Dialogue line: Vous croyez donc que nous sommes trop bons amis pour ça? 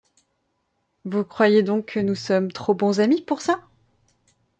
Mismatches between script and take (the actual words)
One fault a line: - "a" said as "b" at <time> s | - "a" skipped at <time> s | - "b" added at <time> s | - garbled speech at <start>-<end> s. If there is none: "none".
none